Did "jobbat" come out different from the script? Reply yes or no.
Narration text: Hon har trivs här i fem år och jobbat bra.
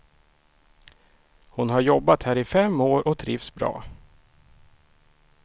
yes